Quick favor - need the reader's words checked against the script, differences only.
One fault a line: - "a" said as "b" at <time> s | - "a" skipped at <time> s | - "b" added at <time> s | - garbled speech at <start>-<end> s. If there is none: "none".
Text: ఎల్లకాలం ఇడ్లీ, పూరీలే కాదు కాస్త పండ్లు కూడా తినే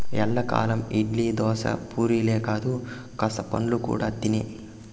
- "దోశ" added at 1.3 s